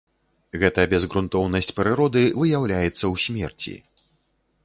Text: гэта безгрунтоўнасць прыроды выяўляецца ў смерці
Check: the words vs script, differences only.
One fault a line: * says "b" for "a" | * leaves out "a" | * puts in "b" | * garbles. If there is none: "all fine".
all fine